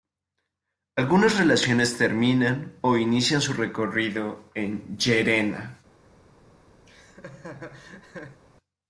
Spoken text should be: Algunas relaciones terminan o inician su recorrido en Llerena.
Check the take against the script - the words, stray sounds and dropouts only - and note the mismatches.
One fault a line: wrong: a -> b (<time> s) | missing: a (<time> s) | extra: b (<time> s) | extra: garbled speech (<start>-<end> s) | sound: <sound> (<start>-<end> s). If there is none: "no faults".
sound: laugh (6.9-8.4 s)